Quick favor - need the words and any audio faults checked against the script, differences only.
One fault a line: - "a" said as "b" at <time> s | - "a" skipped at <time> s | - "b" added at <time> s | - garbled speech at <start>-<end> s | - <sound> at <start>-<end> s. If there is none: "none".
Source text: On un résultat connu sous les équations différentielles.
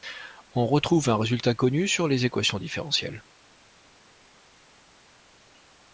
- "retrouve" added at 0.7 s
- "sous" said as "sur" at 1.9 s